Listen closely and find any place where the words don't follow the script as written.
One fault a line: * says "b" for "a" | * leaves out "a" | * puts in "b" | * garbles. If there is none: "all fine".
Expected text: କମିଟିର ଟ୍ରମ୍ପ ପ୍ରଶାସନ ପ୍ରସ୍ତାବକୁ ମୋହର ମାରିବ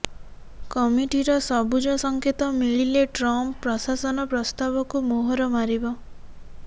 * puts in "ସବୁଜ ସଙ୍କେତ ମିଳିଲେ"